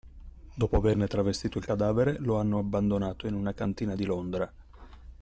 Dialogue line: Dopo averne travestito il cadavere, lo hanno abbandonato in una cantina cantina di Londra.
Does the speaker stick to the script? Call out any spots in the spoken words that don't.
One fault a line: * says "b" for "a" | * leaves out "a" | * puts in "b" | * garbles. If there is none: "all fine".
* leaves out "cantina"